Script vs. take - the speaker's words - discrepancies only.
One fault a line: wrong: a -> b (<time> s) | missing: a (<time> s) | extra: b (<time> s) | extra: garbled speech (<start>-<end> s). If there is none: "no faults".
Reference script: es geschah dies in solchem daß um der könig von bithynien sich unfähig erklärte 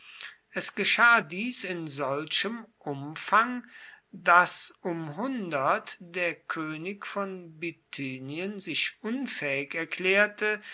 extra: umfang (2.8 s)